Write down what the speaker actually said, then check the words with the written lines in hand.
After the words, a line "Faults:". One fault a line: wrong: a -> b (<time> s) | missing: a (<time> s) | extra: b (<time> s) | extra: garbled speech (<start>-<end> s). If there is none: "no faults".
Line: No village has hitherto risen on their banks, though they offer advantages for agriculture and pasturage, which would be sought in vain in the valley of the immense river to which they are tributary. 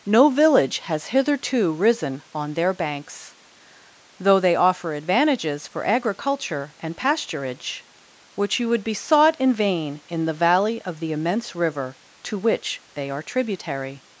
No village has hitherto risen on their banks, though they offer advantages for agriculture and pasturage, which you would be sought in vain in the valley of the immense river to which they are tributary.
Faults:
extra: you (8.6 s)